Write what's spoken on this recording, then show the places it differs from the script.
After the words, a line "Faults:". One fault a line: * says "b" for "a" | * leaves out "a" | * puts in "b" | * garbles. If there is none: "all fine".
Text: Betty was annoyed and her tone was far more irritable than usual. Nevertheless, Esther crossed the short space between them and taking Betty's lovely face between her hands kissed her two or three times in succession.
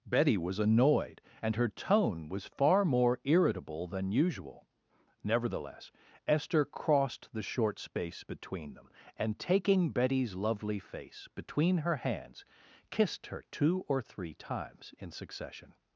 Betty was annoyed and her tone was far more irritable than usual. Nevertheless, Esther crossed the short space between them and taking Betty's lovely face between her hands kissed her two or three times in succession.
Faults:
all fine